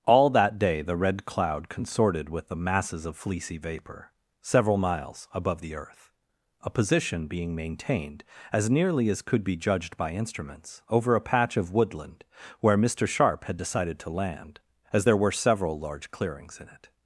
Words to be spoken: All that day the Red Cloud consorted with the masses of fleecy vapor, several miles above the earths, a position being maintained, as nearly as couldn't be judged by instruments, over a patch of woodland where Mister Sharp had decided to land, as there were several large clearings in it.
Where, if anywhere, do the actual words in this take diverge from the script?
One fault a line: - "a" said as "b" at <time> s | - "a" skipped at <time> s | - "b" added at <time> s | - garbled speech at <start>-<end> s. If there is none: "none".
- "earths" said as "earth" at 5.8 s
- "couldn't" said as "could" at 9.2 s